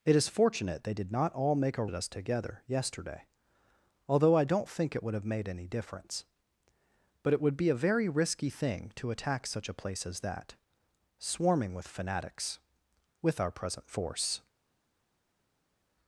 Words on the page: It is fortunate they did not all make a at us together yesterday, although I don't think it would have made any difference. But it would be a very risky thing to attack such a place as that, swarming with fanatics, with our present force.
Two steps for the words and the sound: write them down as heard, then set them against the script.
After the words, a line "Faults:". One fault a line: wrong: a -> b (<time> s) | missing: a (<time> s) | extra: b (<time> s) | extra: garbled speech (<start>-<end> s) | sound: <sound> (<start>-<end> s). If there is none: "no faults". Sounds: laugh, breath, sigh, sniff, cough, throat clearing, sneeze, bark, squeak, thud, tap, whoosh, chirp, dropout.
It is fortunate they did not all make a at us together yesterday, although I don't think it would have made any difference. But it would be a very risky thing to attack such a place as that, swarming with fanatics, with our present force.
Faults:
no faults